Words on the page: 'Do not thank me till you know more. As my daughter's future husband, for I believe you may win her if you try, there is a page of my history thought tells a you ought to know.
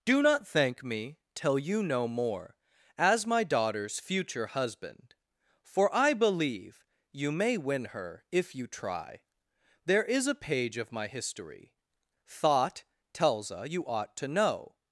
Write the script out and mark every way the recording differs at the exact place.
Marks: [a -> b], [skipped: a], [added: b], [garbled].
'Do not thank me till you know more. As my daughter's future husband, for I believe you may win her if you try, there is a page of my history thought tells a you ought to know.